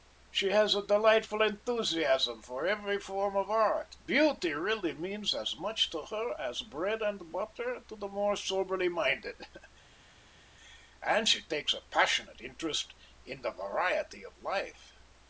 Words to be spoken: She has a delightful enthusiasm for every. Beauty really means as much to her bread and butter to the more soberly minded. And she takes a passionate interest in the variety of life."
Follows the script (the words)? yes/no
no